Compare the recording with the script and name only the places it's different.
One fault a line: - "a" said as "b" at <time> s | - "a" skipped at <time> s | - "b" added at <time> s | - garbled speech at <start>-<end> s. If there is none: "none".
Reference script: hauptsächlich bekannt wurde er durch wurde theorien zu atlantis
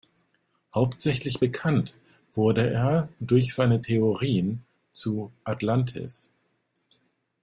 - "wurde" said as "seine" at 3.5 s